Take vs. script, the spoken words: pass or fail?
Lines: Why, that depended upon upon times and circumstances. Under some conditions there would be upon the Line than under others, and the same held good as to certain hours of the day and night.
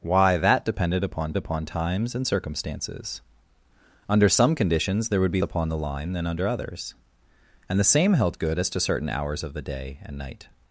pass